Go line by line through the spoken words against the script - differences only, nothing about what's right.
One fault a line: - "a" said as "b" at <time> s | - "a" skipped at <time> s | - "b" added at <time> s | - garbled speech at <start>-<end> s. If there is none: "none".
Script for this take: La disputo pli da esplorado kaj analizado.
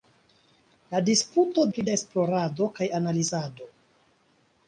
none